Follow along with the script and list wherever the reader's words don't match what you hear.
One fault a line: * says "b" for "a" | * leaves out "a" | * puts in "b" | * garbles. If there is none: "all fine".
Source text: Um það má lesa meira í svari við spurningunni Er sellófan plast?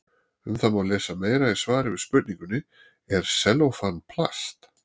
all fine